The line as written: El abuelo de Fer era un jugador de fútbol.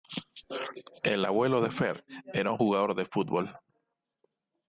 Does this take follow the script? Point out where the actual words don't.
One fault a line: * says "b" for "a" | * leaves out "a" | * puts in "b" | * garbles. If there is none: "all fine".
all fine